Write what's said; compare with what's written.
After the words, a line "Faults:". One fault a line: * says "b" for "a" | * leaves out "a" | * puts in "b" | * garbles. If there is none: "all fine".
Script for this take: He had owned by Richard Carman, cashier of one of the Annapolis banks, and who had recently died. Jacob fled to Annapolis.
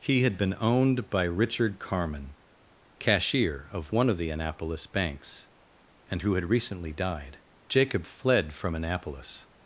He had been owned by Richard Carman, cashier of one of the Annapolis banks, and who had recently died. Jacob fled from Annapolis.
Faults:
* puts in "been"
* says "from" for "to"